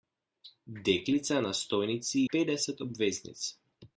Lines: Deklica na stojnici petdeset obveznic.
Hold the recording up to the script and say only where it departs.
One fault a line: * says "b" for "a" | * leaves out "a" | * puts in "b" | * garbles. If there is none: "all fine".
all fine